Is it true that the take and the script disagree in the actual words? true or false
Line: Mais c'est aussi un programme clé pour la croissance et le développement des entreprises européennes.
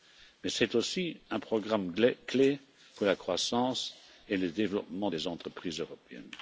false